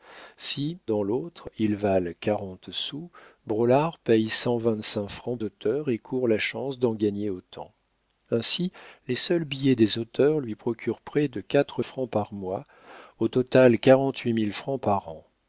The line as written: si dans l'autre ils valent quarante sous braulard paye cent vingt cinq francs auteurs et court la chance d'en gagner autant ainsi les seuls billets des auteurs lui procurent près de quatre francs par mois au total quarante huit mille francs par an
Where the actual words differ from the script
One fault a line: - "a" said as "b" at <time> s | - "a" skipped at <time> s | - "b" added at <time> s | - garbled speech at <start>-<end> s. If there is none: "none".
none